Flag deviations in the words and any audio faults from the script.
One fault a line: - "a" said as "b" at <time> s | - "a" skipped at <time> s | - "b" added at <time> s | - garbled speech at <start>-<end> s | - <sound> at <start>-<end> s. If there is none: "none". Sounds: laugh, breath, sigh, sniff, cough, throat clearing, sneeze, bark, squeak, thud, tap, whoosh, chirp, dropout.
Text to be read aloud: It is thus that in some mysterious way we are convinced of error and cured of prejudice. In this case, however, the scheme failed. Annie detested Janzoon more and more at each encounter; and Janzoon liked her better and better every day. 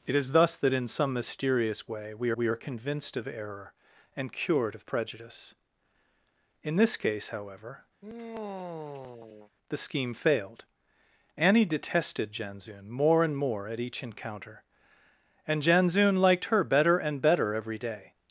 - "we" added at 2.3 s
- sigh at 8.0-9.5 s